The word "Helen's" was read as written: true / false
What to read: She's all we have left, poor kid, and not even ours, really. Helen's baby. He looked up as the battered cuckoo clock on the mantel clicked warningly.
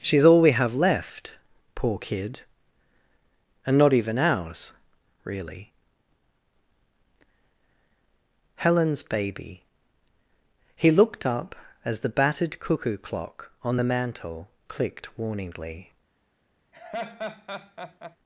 true